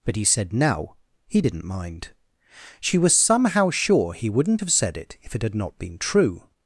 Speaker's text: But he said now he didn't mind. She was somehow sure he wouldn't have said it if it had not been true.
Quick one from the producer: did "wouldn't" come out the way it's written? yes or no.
yes